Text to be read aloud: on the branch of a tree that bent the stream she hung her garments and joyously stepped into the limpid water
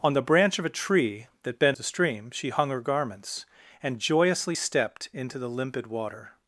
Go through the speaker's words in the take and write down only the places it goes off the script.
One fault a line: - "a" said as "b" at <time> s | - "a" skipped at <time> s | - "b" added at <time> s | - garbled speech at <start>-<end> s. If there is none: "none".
none